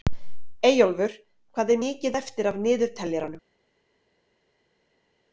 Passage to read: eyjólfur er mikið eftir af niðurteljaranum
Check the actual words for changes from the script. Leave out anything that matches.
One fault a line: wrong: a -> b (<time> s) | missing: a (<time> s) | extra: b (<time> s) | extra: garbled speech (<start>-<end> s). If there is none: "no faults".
extra: hvað (1.6 s)